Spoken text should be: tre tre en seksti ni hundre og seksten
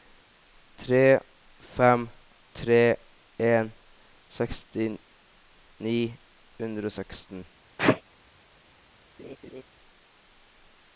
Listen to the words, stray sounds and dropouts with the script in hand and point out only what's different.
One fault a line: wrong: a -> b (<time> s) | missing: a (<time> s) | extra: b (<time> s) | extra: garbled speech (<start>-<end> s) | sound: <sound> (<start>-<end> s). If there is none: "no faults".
extra: fem (1.8 s)
sound: sneeze (7.8-8.0 s)
sound: laugh (9.2-9.6 s)